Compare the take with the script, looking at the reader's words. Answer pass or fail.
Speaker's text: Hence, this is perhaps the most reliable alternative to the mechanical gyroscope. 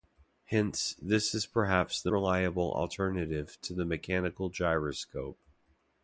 fail